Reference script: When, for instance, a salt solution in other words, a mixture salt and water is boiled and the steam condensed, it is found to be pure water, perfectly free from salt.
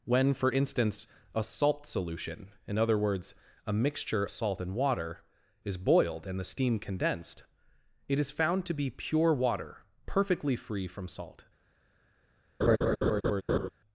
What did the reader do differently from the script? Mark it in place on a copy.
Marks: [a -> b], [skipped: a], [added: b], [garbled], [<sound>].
When, for instance, a salt solution in other words, a mixture salt and water is boiled and the steam condensed, it is found to be pure water, perfectly free from salt. [laugh]